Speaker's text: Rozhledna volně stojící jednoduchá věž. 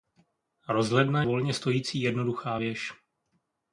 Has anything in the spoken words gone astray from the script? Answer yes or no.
no